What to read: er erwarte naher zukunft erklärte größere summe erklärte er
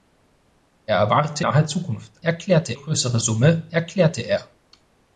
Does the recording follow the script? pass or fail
pass